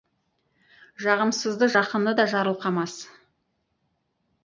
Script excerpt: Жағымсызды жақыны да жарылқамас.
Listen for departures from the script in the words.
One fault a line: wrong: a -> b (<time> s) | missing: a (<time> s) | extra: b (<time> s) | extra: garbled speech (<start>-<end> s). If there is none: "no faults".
no faults